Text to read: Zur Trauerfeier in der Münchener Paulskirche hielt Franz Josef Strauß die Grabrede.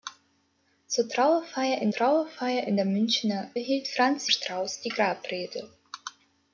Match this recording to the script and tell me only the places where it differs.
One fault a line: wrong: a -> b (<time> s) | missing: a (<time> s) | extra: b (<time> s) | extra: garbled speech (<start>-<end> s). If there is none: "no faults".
extra: Trauerfeier in (1.9 s)
missing: Paulskirche (3.5 s)
missing: Josef (4.3 s)